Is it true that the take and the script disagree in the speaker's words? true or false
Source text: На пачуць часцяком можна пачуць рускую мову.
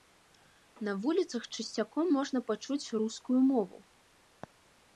true